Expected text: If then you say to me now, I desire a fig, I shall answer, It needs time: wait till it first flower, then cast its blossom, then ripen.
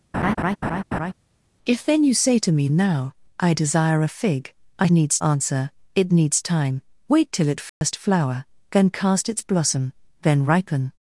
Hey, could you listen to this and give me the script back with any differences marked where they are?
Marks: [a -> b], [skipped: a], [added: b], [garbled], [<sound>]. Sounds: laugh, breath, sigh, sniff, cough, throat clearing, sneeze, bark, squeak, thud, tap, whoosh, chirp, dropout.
[laugh] If then you say to me now, I desire a fig, I [shall -> needs] answer, It needs time: wait till it first [dropout] flower, then cast its blossom, then ripen.